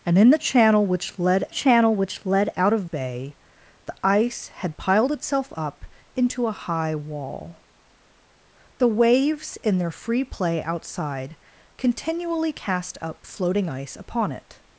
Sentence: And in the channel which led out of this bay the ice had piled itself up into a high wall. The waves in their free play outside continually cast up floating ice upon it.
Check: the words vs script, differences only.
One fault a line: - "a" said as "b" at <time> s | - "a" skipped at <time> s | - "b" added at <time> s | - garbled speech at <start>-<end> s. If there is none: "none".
- "channel which led" added at 1.5 s
- "this" skipped at 2.9 s